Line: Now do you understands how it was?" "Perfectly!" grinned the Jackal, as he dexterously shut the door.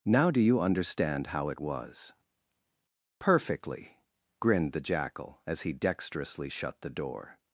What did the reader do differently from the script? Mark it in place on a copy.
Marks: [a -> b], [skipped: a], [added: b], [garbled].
Now do you [understands -> understand] how it was?" "Perfectly!" grinned the Jackal, as he dexterously shut the door.